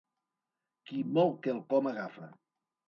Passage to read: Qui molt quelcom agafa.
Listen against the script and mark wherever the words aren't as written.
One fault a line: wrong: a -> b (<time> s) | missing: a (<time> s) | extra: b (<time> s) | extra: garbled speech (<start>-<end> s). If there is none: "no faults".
no faults